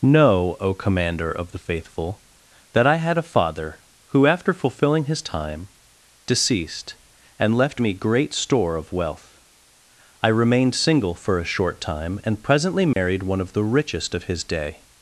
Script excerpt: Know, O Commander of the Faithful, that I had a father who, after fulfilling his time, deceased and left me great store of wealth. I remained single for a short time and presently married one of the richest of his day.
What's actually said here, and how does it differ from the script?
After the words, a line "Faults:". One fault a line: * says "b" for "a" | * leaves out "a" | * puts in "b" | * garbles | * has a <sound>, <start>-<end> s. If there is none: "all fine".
Know, O Commander of the Faithful, that I had a father who, after fulfilling his time, deceased and left me great store of wealth. I remained single for a short time and presently married one of the richest of his day.
Faults:
* has a dropout, 12.9-13.0 s